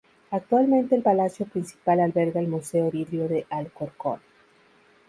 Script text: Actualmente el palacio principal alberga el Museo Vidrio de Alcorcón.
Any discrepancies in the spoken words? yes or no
no